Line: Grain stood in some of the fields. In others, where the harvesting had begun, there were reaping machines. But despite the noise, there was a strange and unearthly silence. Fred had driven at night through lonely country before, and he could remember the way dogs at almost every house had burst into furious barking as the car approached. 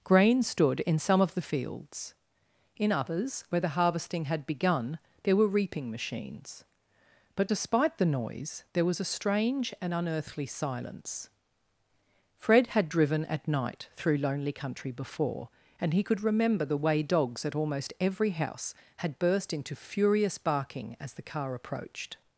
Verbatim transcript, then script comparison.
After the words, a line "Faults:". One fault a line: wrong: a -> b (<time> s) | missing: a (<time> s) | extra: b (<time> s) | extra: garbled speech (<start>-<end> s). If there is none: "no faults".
Grain stood in some of the fields. In others, where the harvesting had begun, there were reaping machines. But despite the noise, there was a strange and unearthly silence. Fred had driven at night through lonely country before, and he could remember the way dogs at almost every house had burst into furious barking as the car approached.
Faults:
no faults